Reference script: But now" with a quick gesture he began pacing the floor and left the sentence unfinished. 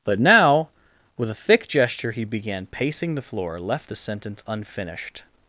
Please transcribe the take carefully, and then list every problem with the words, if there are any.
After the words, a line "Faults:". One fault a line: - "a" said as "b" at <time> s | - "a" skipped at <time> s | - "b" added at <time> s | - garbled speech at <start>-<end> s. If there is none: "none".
But now" with a thick gesture he began pacing the floor left the sentence unfinished.
Faults:
- "quick" said as "thick" at 1.3 s
- "and" skipped at 3.6 s